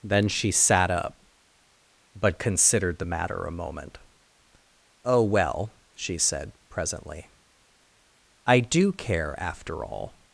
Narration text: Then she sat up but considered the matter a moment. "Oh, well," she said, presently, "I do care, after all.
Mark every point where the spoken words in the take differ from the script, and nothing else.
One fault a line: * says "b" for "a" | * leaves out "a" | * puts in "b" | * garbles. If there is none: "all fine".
all fine